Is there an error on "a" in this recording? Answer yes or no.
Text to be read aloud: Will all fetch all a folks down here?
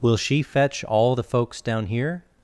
yes